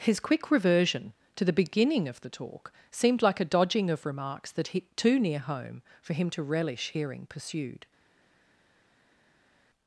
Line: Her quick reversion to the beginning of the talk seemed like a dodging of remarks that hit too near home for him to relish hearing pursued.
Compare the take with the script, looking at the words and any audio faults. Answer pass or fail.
fail